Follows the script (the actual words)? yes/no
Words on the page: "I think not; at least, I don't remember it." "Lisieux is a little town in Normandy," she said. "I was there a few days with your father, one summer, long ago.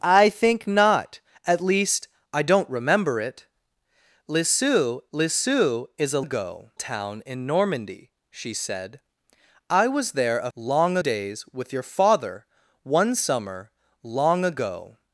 no